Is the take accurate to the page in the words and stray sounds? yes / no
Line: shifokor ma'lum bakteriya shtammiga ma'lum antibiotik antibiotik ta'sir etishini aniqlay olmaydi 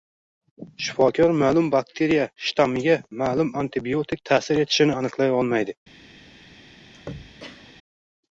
no